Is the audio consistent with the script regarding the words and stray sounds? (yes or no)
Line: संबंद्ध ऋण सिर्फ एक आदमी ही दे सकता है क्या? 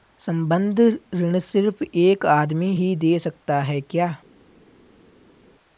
yes